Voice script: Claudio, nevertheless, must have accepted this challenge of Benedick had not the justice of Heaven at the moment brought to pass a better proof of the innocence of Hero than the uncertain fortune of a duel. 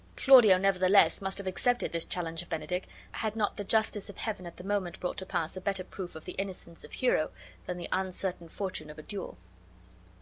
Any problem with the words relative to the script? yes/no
no